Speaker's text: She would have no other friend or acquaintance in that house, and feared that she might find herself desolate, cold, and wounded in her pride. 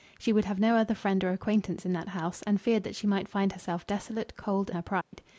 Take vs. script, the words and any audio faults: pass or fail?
fail